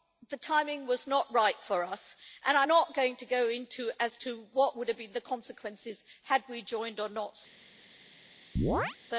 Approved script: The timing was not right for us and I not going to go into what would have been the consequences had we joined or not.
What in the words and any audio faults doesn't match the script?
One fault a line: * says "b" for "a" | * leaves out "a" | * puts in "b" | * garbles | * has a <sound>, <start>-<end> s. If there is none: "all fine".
* has a chirp, 8.6-9.0 s